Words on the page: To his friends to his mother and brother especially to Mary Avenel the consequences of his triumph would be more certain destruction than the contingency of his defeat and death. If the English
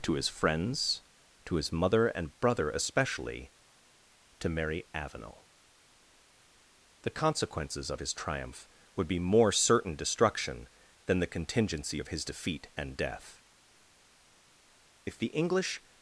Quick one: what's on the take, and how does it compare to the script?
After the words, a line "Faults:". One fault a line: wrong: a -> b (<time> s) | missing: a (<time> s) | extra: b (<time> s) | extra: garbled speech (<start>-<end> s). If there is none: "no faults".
To his friends to his mother and brother especially to Mary Avenel the consequences of his triumph would be more certain destruction than the contingency of his defeat and death. If the English
Faults:
no faults